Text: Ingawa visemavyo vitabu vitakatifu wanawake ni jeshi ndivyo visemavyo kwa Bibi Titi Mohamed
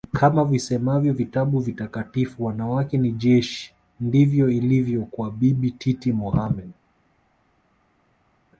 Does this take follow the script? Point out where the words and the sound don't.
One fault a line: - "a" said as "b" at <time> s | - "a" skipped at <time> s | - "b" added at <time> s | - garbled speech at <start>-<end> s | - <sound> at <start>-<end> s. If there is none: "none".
- "Ingawa" said as "Kama" at 0.1 s
- "visemavyo" said as "ilivyo" at 4.5 s